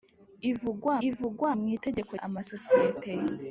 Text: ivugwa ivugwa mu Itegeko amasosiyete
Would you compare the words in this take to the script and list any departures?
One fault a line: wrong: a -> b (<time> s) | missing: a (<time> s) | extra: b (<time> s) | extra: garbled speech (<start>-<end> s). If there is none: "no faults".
no faults